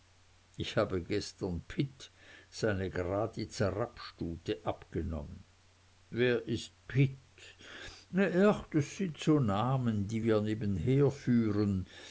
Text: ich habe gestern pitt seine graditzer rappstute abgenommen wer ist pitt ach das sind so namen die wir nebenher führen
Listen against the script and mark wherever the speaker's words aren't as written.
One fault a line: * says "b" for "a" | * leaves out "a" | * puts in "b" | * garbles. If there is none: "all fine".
all fine